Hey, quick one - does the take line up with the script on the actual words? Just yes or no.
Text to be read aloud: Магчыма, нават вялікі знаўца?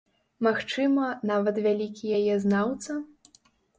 no